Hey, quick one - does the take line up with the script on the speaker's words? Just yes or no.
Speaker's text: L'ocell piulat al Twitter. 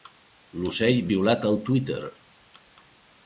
yes